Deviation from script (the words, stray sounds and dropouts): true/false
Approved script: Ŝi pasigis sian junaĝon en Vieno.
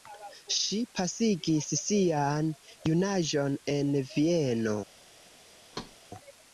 true